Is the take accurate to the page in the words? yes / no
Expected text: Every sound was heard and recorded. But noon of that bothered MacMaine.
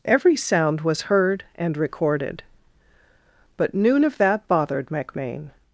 yes